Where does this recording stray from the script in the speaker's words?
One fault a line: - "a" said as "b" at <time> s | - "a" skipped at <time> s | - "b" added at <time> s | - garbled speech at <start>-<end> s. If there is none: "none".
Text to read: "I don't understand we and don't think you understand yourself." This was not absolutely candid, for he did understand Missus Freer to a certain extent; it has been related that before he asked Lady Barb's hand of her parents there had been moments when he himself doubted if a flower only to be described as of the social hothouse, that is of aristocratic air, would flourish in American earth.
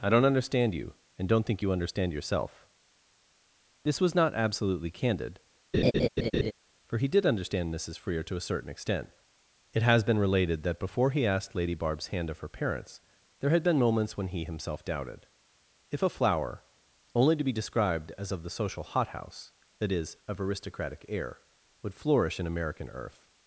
- "we" said as "you" at 0.7 s